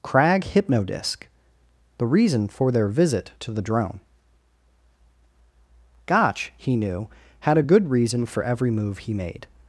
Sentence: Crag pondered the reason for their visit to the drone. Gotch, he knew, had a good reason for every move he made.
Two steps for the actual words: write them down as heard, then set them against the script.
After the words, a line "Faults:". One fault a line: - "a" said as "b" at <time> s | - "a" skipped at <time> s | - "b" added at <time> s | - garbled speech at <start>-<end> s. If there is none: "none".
Crag hypnodisc the reason for their visit to the drone. Gotch, he knew, had a good reason for every move he made.
Faults:
- "pondered" said as "hypnodisc" at 0.5 s